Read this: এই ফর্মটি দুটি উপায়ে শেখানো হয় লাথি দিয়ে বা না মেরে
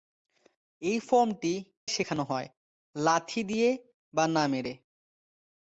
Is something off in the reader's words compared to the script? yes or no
yes